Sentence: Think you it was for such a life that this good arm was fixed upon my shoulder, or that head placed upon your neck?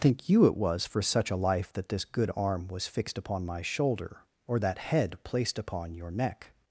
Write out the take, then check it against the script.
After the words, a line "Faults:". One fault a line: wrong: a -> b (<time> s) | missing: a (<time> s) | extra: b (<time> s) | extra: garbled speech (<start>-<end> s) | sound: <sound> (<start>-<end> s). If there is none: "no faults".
Think you it was for such a life that this good arm was fixed upon my shoulder, or that head placed upon your neck?
Faults:
no faults